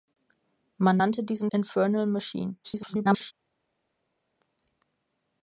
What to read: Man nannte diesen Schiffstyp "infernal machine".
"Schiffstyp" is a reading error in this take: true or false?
true